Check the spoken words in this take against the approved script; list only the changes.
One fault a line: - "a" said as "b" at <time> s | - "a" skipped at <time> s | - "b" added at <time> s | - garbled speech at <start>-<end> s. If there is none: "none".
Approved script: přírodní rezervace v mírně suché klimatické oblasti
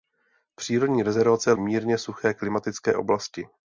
none